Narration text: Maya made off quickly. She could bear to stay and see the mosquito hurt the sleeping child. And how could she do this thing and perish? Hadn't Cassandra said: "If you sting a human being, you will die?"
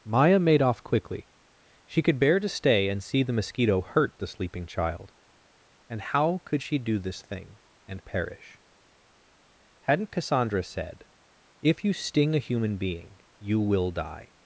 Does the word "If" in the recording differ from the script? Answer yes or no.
no